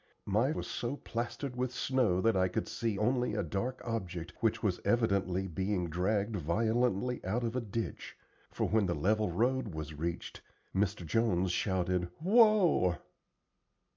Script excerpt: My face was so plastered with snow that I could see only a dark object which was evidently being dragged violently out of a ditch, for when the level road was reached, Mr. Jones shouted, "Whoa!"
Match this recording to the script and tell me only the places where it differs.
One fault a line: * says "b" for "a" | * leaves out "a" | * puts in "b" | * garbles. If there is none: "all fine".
* leaves out "face"